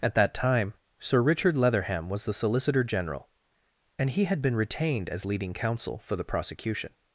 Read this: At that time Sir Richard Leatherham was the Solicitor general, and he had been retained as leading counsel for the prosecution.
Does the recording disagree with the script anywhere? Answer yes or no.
no